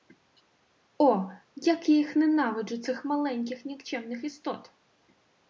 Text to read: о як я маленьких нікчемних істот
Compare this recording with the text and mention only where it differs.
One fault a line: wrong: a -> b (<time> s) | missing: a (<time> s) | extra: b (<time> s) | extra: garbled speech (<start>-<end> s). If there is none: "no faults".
extra: їх ненавиджу цих (1.9 s)